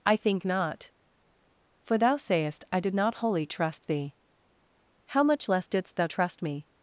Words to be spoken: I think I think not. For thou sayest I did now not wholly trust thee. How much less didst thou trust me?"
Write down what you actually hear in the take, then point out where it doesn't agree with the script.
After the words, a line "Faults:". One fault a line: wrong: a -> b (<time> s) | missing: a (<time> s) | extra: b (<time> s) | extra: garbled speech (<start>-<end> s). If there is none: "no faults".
I think not. For thou sayest I did not wholly trust thee. How much less didst thou trust me?"
Faults:
missing: I think (0.4 s)
missing: now (3.0 s)